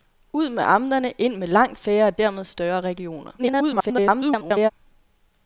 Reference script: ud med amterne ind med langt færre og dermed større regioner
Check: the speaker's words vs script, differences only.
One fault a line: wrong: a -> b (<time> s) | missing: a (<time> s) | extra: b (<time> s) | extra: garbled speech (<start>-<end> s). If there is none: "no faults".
extra: garbled speech (3.4-4.7 s)